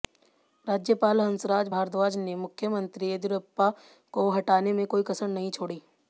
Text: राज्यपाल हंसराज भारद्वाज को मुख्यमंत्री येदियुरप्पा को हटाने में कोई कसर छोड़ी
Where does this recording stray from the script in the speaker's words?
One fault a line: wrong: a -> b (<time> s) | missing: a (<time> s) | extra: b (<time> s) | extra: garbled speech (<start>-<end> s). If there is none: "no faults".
wrong: को -> ने (2.2 s)
extra: नहीं (5.3 s)